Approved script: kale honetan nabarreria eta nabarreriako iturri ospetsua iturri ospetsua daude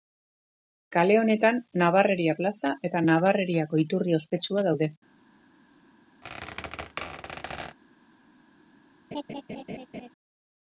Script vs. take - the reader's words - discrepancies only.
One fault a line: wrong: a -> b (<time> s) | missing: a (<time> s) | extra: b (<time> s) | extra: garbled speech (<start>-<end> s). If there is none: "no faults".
extra: plaza (2.4 s)
missing: iturri ospetsua (4.7 s)